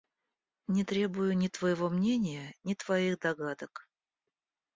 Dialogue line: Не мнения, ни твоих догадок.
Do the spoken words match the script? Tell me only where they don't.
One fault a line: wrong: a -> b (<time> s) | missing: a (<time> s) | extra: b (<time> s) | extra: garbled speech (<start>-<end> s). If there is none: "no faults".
extra: требую ни твоего (0.8 s)